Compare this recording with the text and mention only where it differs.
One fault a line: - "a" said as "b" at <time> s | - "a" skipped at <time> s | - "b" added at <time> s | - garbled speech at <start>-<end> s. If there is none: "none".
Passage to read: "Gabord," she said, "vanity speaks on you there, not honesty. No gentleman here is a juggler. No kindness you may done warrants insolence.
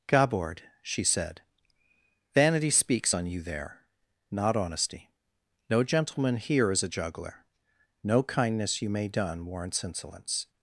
none